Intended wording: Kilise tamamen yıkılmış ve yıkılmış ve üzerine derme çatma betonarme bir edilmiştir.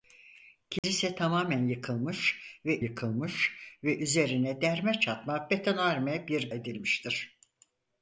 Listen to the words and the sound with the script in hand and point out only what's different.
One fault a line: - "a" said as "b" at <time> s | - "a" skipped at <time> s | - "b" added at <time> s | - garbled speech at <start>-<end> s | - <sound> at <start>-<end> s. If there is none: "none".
- dropout at 0.8-0.8 s